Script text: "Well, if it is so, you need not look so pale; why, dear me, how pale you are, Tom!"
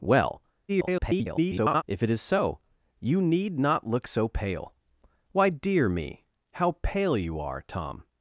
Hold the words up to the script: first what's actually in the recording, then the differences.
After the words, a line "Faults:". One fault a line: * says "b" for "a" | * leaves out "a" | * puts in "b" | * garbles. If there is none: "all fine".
"Well, [garbled] if it is so, you need not look so pale; why, dear me, how pale you are, Tom!"
Faults:
* garbles